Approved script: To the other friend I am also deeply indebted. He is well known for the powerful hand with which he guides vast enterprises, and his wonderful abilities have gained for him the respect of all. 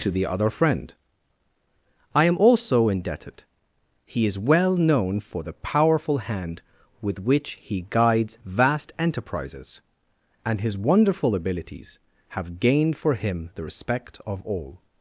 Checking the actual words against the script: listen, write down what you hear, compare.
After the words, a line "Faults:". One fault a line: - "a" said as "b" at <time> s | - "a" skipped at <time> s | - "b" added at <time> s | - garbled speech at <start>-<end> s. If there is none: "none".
To the other friend I am also indebted. He is well known for the powerful hand with which he guides vast enterprises, and his wonderful abilities have gained for him the respect of all.
Faults:
- "deeply" skipped at 2.9 s